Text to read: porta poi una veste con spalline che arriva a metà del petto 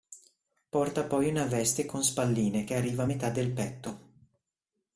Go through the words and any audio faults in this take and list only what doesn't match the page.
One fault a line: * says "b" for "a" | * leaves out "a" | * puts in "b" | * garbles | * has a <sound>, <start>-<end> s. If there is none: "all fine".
all fine